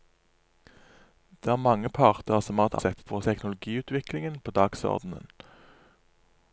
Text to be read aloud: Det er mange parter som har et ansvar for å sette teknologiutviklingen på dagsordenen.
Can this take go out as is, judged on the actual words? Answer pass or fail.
fail